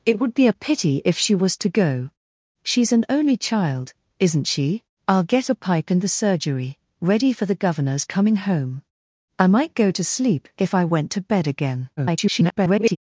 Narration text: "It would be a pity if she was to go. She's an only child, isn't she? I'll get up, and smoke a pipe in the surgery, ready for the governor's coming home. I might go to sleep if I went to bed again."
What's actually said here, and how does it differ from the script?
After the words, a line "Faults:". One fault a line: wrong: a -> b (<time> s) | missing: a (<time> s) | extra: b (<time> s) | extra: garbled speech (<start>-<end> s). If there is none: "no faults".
"It would be a pity if she was to go. She's an only child, isn't she? I'll get a pipe in the surgery, ready for the governor's coming home. I might go to sleep if I went to bed again." [garbled]
Faults:
missing: up and smoke (5.5 s)
extra: garbled speech (12.0-13.0 s)